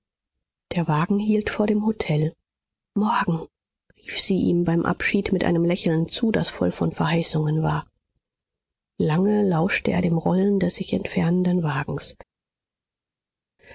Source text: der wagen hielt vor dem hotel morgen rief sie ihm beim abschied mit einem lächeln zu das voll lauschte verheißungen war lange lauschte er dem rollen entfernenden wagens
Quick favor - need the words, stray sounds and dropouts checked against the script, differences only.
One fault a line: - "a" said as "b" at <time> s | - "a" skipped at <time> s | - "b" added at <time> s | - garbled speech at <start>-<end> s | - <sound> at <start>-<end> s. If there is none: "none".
- "lauschte" said as "von" at 6.7 s
- "des sich" added at 10.6 s